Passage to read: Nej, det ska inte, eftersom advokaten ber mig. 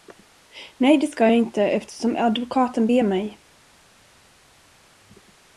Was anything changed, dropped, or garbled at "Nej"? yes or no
no